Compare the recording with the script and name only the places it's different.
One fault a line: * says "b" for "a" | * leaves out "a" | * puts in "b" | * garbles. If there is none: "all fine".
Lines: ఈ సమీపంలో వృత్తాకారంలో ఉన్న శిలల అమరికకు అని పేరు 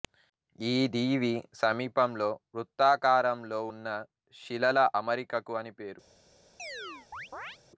* puts in "దీవి"